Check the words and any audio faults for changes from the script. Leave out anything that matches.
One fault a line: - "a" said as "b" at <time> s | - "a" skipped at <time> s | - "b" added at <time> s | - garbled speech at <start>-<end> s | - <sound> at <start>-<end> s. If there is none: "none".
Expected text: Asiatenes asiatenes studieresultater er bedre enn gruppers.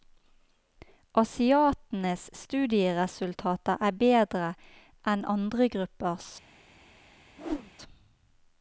- "asiatenes" skipped at 2.2 s
- "andre" added at 5.3 s
- whoosh at 7.4-7.7 s